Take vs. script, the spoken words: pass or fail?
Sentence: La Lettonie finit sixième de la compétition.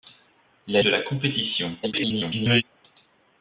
fail